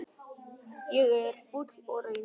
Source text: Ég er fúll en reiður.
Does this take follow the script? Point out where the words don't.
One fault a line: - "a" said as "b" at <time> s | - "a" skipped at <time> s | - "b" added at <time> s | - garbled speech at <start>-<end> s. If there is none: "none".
- "en" said as "og" at 1.9 s